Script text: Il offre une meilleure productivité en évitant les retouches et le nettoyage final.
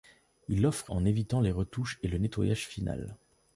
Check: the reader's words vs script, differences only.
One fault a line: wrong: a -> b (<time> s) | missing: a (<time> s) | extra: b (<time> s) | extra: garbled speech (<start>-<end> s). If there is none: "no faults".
missing: une meilleure productivité (0.9 s)